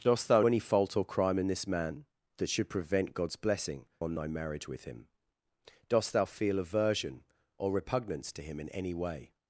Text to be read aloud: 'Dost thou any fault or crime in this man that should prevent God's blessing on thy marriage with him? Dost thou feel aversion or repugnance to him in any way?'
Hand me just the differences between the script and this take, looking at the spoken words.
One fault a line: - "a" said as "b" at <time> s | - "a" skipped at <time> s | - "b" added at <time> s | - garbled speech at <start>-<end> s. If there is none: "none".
none